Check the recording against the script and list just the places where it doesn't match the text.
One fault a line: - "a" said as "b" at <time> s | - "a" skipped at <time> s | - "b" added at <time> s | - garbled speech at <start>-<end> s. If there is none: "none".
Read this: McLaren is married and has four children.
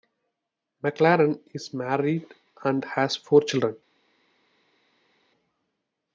none